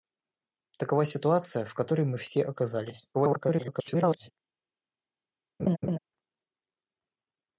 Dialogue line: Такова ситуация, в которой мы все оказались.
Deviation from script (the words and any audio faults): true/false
true